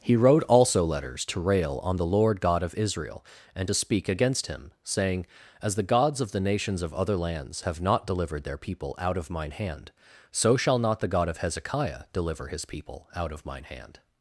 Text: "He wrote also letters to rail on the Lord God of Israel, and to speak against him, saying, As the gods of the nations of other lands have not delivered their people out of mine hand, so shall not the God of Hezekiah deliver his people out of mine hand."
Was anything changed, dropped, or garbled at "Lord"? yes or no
no